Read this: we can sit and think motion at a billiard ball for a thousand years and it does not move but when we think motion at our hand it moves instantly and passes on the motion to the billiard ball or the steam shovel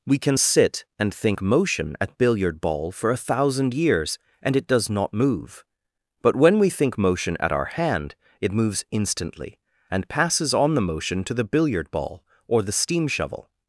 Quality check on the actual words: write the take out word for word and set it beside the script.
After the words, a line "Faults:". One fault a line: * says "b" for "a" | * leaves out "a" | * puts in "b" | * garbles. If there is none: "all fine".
we can sit and think motion at billiard ball for a thousand years and it does not move but when we think motion at our hand it moves instantly and passes on the motion to the billiard ball or the steam shovel
Faults:
* leaves out "a"